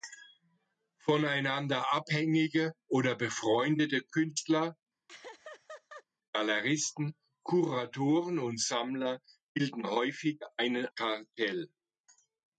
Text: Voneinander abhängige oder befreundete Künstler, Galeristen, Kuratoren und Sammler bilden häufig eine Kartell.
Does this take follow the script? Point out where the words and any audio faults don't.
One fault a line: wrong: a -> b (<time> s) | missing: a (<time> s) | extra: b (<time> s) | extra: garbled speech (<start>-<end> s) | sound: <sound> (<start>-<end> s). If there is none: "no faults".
sound: laugh (5.1-6.0 s)